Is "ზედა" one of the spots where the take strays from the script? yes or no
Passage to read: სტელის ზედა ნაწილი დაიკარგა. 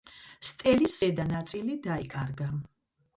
no